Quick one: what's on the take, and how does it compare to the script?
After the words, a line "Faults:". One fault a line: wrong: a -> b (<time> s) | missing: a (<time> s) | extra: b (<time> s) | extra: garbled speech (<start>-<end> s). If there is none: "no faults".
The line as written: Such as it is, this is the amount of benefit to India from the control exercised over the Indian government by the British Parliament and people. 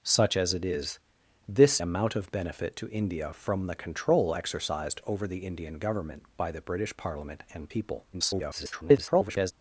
Such as it is, this amount of benefit to India from the control exercised over the Indian government by the British Parliament and people. [garbled]
Faults:
missing: is the (1.8 s)
extra: garbled speech (8.1-9.5 s)